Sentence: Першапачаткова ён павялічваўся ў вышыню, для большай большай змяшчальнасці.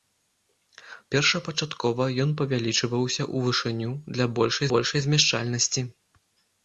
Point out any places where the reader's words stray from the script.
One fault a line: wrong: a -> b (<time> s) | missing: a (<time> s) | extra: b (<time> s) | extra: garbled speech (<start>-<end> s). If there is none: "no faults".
no faults